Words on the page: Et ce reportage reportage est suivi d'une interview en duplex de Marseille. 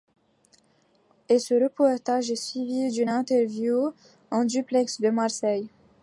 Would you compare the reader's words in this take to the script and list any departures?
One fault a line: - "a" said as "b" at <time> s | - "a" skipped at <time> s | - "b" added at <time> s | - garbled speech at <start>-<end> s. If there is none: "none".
- "reportage" skipped at 2.3 s